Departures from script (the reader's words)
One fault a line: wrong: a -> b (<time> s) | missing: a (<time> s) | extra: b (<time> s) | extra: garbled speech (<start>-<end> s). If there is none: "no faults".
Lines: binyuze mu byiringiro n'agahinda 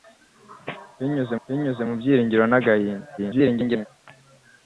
extra: binyuze (1.5 s)
extra: garbled speech (3.2-3.9 s)